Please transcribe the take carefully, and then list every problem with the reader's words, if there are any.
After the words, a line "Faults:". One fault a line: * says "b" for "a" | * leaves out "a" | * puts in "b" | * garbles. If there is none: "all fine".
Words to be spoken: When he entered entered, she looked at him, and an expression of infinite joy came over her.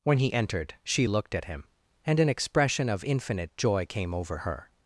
When he entered, she looked at him, and an expression of infinite joy came over her.
Faults:
* leaves out "entered"